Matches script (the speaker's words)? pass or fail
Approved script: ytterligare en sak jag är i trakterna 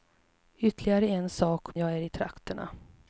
pass